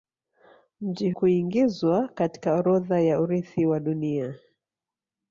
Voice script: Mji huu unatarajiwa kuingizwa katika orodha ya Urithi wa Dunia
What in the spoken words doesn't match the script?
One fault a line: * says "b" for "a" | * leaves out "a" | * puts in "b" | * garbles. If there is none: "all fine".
* leaves out "huu unatarajiwa"